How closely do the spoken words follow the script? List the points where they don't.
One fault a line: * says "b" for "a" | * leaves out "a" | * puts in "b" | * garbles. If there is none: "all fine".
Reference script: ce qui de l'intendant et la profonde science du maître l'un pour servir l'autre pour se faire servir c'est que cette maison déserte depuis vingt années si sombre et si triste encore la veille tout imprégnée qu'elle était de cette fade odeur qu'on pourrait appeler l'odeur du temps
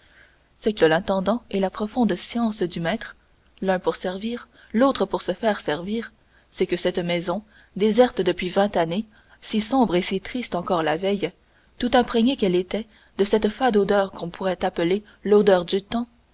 all fine